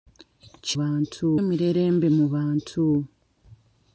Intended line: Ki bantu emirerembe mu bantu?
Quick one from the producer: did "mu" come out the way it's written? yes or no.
yes